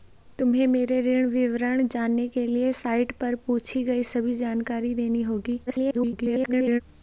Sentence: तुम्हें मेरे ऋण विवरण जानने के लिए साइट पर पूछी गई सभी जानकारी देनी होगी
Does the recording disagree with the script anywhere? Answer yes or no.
yes